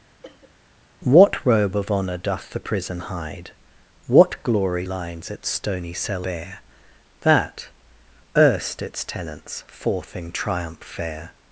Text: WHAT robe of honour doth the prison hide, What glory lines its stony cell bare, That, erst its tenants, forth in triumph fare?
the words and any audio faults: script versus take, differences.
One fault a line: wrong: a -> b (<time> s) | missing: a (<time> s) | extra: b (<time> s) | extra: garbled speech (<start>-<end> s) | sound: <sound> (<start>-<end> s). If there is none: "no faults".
sound: cough (0.2-0.5 s)